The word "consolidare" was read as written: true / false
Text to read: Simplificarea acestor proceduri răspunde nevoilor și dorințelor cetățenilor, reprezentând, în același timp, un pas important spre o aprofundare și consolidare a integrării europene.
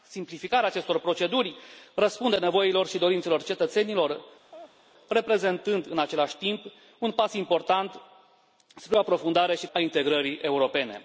false